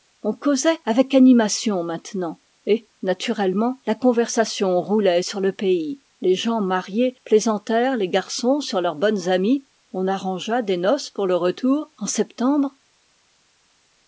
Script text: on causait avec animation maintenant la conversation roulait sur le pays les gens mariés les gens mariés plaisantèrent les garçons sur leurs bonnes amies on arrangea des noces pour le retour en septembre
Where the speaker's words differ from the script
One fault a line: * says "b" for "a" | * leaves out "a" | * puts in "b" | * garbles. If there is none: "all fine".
* puts in "et naturellement"
* leaves out "les gens mariés"